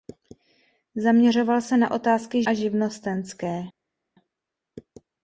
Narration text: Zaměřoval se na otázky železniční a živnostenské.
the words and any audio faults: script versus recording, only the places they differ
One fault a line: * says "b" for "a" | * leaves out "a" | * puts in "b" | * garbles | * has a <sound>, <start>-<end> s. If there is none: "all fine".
* leaves out "železniční"